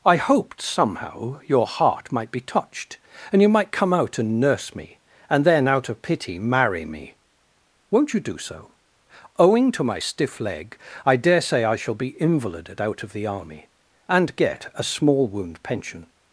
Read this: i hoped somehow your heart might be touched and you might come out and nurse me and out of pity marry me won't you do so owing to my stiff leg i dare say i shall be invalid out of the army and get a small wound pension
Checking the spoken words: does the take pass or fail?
fail